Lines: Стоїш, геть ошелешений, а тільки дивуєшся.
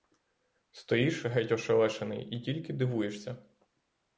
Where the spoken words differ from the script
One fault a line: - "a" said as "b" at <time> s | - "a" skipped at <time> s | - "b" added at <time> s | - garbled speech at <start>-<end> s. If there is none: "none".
- "а" said as "і" at 2.3 s